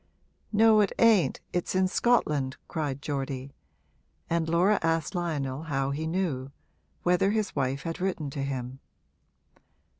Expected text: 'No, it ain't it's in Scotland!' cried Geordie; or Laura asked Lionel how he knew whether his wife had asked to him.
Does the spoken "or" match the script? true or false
false